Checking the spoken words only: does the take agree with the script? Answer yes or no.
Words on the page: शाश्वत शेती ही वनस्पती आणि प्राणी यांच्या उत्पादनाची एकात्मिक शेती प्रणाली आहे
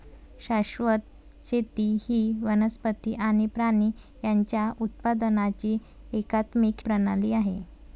no